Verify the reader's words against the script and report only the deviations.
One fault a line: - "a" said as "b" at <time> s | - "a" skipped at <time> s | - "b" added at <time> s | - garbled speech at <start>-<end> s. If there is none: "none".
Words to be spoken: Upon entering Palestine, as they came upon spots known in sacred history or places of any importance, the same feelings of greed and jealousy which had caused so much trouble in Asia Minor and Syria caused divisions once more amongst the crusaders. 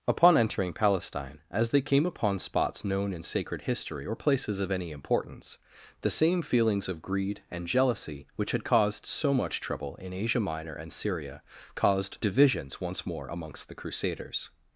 none